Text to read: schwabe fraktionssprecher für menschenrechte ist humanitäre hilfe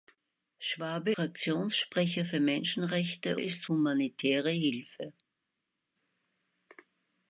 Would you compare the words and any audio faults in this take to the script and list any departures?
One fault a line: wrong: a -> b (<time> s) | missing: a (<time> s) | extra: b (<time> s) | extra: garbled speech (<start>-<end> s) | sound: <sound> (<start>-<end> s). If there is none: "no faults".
no faults